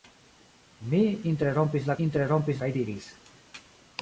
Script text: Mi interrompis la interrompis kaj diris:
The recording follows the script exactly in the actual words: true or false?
true